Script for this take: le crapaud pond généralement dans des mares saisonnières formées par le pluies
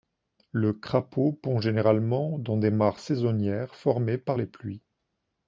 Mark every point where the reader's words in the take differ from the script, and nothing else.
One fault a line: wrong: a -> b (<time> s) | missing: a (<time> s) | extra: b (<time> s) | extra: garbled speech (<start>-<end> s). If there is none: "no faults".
wrong: le -> les (4.4 s)